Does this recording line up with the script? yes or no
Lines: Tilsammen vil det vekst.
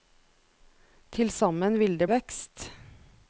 yes